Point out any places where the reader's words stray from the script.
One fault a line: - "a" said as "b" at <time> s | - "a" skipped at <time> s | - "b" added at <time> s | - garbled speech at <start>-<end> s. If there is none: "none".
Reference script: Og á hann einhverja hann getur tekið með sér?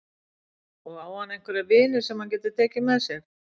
- "vini sem" added at 1.7 s